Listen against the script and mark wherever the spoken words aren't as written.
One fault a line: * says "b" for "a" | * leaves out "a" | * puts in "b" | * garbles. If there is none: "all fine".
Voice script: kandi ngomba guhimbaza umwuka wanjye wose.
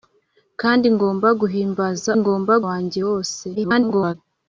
* says "ngomba" for "umwuka"
* garbles